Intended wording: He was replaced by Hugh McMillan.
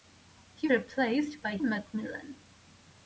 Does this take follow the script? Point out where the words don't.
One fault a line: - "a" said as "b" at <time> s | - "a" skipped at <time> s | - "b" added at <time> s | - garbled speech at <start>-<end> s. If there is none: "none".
- "was" skipped at 0.7 s
- "Hugh" skipped at 1.6 s